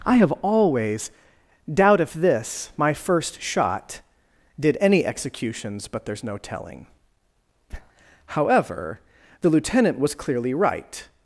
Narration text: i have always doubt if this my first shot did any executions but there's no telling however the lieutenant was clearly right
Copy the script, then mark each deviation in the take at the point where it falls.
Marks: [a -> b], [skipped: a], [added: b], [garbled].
i have always doubt if this my first shot did any executions but there's no telling however the lieutenant was clearly right